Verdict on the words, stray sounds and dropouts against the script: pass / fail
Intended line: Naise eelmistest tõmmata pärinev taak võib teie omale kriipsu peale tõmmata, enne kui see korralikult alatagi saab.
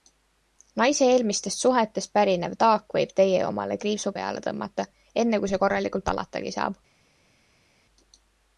fail